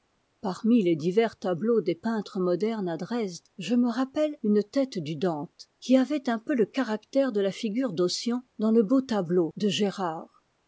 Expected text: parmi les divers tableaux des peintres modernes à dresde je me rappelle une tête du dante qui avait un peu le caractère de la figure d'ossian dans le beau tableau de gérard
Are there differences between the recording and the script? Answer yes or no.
no